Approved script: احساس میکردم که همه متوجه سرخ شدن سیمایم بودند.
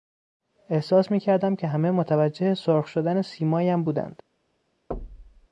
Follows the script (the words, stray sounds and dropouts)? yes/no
no